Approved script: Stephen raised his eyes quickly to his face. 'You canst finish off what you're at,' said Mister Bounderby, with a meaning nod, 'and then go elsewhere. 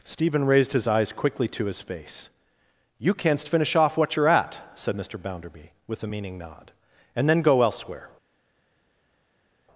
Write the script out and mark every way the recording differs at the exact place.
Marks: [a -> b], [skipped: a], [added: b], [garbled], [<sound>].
Stephen raised his eyes quickly to his face. 'You canst finish off what you're at,' said Mister Bounderby, with a meaning nod, 'and then go elsewhere.